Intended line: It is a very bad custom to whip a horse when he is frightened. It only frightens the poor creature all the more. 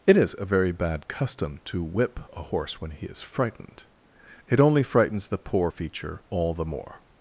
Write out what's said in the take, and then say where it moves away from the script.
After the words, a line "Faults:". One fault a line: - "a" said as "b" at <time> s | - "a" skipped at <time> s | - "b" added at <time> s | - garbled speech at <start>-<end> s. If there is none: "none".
It is a very bad custom to whip a horse when he is frightened. It only frightens the poor feature all the more.
Faults:
- "creature" said as "feature" at 5.6 s